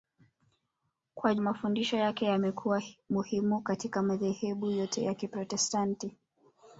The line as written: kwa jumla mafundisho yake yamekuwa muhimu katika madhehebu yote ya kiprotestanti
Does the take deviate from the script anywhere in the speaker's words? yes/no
yes